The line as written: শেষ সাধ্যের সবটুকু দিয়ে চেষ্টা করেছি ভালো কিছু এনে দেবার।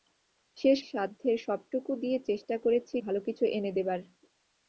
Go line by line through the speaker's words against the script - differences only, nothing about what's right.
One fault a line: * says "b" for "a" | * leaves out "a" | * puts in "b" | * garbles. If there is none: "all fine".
all fine